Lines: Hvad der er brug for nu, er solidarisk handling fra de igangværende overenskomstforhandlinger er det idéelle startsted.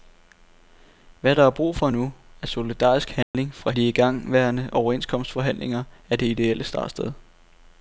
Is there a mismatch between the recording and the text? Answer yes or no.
no